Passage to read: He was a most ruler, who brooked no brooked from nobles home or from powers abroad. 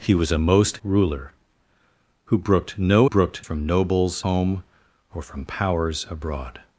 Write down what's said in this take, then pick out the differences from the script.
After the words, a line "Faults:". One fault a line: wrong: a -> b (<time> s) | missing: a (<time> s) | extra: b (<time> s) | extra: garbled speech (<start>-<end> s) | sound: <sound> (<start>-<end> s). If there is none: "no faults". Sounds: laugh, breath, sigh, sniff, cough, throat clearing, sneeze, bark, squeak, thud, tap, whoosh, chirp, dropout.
He was a most ruler, who brooked no brooked from nobles home or from powers abroad.
Faults:
no faults